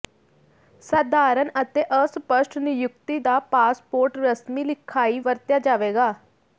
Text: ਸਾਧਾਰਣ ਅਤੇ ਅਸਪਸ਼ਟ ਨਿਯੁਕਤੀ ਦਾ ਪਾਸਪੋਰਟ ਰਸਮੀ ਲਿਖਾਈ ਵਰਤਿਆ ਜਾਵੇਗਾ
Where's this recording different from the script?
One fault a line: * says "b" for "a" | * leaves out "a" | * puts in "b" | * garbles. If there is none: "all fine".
all fine